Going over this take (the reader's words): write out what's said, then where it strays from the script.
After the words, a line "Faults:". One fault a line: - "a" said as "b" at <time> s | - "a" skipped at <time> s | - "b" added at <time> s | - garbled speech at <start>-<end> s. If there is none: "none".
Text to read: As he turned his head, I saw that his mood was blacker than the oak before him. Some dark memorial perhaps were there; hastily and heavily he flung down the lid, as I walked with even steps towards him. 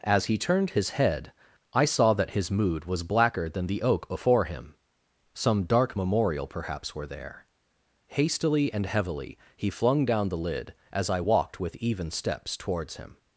As he turned his head, I saw that his mood was blacker than the oak before him. Some dark memorial perhaps were there; hastily and heavily he flung down the lid, as I walked with even steps towards him.
Faults:
none